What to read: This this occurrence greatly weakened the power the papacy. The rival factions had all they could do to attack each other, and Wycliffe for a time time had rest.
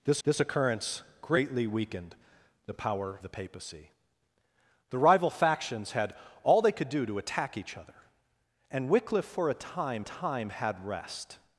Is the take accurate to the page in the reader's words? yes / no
yes